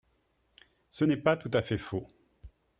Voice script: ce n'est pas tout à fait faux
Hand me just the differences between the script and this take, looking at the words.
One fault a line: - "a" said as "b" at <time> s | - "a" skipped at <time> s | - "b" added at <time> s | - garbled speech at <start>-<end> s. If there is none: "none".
none